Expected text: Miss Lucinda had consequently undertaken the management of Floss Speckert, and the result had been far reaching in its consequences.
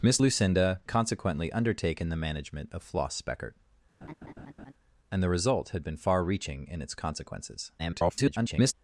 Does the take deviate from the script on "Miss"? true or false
false